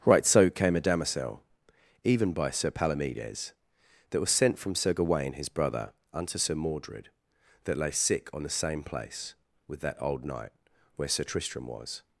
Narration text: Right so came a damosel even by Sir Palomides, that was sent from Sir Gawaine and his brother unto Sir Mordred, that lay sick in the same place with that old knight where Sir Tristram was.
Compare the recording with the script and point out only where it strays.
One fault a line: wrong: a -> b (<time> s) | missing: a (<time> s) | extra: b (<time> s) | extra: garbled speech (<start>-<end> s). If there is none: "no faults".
missing: and (5.3 s)
wrong: in -> on (8.3 s)